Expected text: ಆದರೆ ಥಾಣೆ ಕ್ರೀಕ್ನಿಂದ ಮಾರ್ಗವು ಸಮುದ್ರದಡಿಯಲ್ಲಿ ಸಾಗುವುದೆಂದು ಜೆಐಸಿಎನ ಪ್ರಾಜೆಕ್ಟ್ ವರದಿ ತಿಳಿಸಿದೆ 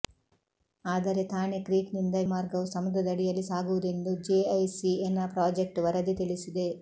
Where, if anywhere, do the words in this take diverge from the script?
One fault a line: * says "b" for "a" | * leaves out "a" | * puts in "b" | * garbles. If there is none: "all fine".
all fine